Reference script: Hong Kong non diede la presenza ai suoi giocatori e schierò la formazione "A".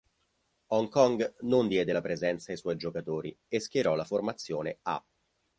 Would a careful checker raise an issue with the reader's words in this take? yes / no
no